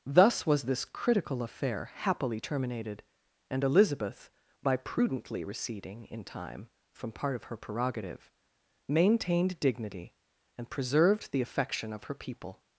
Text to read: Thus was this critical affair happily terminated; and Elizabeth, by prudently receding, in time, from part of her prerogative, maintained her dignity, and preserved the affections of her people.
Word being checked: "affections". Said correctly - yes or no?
no